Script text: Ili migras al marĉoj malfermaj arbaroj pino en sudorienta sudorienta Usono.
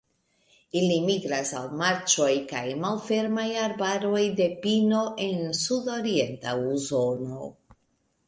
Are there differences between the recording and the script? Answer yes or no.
yes